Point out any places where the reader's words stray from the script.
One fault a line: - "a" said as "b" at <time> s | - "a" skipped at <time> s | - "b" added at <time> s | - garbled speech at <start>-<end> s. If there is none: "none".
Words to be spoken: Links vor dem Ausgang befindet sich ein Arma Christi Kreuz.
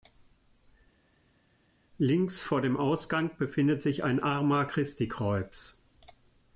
none